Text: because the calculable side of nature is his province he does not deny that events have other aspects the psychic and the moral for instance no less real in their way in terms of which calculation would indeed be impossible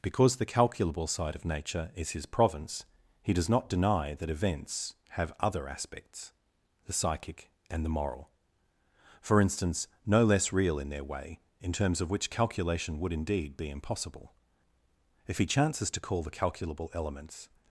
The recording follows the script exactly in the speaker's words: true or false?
false